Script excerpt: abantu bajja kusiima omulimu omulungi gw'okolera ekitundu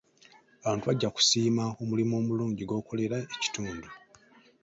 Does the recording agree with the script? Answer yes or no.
yes